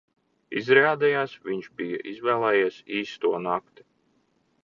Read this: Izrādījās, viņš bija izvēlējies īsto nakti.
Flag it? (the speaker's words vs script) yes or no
no